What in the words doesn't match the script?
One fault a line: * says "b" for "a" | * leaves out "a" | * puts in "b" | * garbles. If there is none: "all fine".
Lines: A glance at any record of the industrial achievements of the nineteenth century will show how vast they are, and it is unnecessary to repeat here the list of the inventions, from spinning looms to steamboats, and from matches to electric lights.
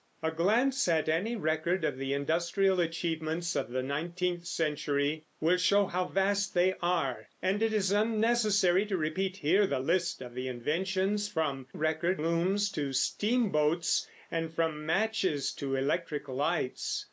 * says "record" for "spinning"